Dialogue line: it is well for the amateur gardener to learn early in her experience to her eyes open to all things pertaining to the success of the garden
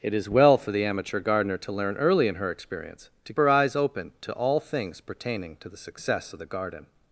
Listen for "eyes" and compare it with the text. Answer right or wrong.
right